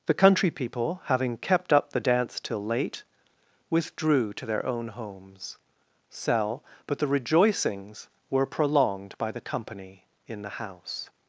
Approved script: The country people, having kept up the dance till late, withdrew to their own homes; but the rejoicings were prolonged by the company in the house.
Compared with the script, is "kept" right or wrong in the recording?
right